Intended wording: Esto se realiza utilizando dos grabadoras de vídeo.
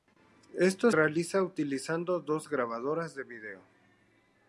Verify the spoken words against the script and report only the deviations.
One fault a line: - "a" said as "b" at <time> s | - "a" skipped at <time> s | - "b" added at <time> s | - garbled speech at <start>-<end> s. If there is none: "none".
- "se" skipped at 0.9 s